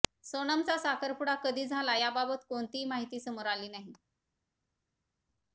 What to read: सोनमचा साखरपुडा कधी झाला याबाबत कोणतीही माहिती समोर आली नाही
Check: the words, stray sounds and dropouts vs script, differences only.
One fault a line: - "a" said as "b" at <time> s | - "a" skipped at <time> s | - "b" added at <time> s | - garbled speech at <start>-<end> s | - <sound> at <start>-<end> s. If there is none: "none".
none